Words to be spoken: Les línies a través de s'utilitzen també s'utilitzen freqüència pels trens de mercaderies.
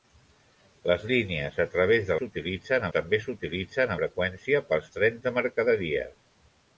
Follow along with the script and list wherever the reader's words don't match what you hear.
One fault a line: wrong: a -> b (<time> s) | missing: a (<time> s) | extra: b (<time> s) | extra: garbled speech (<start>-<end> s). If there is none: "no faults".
no faults